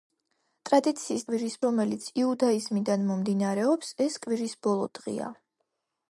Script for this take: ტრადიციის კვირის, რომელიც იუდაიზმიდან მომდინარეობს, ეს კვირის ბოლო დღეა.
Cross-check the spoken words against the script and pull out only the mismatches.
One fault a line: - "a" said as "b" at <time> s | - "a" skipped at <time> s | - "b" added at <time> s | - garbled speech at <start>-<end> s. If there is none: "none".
none